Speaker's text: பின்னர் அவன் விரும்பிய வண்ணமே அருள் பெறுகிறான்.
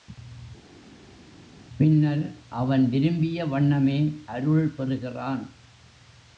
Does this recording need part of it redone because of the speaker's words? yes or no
no